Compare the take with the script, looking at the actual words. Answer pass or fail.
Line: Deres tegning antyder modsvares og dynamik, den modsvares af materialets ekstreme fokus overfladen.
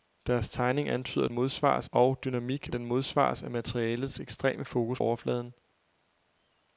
pass